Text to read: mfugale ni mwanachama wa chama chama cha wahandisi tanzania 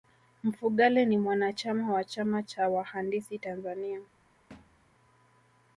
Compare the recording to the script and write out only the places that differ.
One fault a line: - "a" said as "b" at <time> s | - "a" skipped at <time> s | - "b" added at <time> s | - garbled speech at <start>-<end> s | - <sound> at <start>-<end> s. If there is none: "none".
- "chama" skipped at 2.4 s
- thud at 4.5-4.9 s